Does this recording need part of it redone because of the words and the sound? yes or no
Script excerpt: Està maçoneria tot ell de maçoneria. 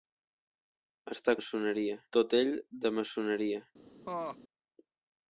yes